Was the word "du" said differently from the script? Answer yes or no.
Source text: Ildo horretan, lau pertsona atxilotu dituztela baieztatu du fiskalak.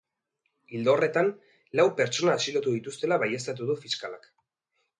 no